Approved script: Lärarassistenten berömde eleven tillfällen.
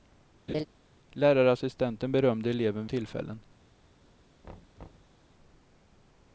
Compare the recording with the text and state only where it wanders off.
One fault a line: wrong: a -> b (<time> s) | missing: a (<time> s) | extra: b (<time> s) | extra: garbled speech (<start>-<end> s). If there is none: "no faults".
no faults